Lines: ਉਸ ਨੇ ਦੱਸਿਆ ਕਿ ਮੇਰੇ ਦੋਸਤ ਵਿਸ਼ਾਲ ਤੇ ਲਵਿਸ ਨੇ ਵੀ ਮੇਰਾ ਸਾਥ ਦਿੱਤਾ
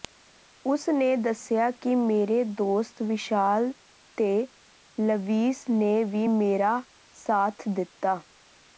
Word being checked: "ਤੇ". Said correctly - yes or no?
yes